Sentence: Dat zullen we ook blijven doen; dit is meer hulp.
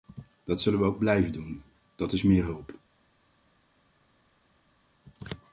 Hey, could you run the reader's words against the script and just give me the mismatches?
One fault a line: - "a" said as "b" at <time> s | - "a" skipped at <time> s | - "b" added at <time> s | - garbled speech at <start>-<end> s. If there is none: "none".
- "dit" said as "dat" at 2.0 s